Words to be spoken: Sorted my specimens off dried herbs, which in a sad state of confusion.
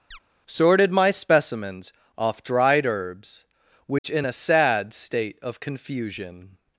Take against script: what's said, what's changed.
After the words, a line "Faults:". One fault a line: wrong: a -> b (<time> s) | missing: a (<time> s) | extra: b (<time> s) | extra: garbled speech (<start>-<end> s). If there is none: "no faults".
Sorted my specimens off dried herbs, which in a sad state of confusion.
Faults:
no faults